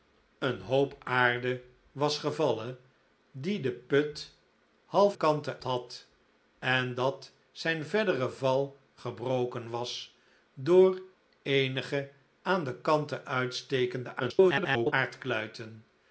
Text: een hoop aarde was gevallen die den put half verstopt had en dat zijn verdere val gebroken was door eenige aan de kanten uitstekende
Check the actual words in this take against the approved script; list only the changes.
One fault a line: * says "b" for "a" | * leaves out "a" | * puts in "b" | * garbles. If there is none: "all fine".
* says "kanten" for "verstopt"
* garbles